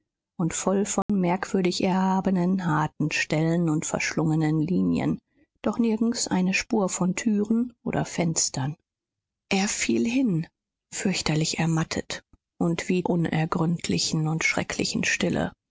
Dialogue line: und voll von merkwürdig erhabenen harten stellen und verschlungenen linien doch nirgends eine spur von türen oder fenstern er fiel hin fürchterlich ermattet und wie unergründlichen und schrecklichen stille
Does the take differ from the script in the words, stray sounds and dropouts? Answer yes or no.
yes